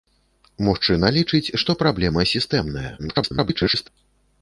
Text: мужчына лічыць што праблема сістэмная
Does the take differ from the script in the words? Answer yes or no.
yes